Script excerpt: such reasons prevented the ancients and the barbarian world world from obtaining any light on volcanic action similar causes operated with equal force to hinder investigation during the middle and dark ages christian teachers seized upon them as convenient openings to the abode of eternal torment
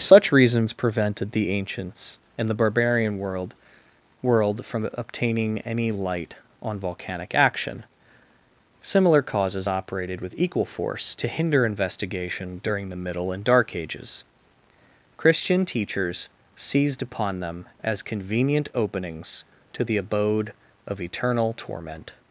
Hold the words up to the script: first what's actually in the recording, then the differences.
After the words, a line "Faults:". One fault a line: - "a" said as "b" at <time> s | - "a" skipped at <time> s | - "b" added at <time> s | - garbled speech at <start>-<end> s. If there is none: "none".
such reasons prevented the ancients and the barbarian world world from obtaining any light on volcanic action similar causes operated with equal force to hinder investigation during the middle and dark ages christian teachers seized upon them as convenient openings to the abode of eternal torment
Faults:
none